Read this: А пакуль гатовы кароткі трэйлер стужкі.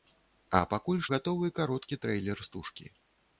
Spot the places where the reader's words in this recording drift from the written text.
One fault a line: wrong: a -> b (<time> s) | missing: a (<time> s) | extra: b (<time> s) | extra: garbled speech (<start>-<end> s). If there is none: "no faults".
no faults